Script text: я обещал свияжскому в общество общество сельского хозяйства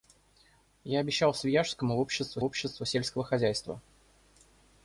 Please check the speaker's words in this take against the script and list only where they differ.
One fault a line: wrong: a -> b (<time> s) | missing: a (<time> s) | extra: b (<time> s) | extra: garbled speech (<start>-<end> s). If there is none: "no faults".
no faults